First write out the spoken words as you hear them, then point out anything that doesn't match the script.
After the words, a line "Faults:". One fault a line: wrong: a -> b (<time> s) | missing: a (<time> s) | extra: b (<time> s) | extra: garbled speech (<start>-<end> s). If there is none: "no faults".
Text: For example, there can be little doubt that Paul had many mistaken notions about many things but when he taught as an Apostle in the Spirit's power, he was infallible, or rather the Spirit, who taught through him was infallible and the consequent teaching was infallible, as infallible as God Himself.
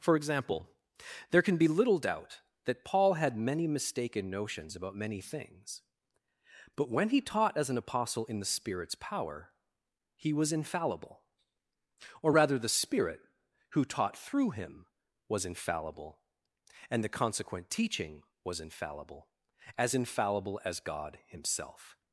For example, there can be little doubt that Paul had many mistaken notions about many things but when he taught as an Apostle in the Spirit's power, he was infallible, or rather the Spirit, who taught through him was infallible and the consequent teaching was infallible, as infallible as God Himself.
Faults:
no faults